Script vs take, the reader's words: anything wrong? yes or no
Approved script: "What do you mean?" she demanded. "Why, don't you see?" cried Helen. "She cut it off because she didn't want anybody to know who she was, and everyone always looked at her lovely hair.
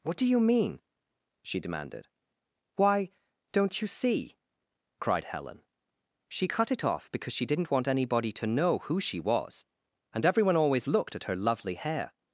no